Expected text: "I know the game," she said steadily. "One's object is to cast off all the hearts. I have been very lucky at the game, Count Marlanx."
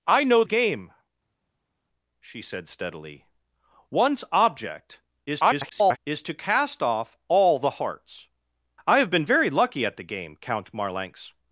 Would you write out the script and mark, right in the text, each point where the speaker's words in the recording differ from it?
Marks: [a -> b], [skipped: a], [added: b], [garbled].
"I know [skipped: the] game," she said steadily. "One's object [garbled] is to cast off all the hearts. I have been very lucky at the game, Count Marlanx."